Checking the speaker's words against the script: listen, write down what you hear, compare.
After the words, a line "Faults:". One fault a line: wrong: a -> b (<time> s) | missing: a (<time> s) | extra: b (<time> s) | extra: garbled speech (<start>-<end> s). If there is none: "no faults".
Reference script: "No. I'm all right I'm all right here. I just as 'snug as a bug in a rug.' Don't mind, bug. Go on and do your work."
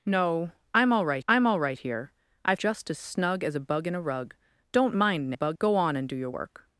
"No. I'm all right I'm all right here. I just as 'snug as a bug in a rug.' Don't mind, bug. Go on and do your work."
Faults:
no faults